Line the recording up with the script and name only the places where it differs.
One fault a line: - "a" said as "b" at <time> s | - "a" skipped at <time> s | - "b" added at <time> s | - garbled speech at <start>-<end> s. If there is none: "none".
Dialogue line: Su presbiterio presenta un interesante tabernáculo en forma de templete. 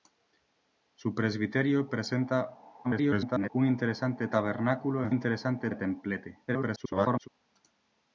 - garbled speech at 2.8-3.5 s
- "forma" said as "interesante" at 5.1 s
- garbled speech at 6.5-7.3 s